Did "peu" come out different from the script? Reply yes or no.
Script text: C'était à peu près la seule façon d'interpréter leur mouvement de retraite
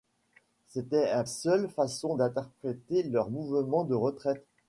yes